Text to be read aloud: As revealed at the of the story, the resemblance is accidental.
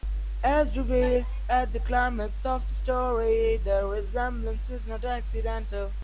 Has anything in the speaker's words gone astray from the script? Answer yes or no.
yes